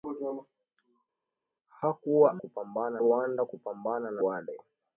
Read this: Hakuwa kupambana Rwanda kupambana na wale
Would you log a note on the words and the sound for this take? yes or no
no